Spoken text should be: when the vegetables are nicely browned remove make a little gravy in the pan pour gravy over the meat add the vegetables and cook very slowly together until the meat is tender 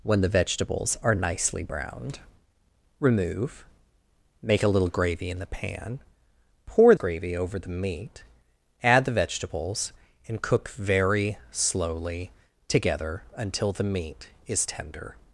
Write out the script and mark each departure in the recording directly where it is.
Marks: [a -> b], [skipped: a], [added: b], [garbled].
when the vegetables are nicely browned remove make a little gravy in the pan pour gravy over the meat add the vegetables and cook very slowly together until the meat is tender